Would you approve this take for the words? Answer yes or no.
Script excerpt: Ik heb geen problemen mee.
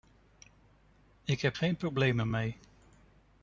yes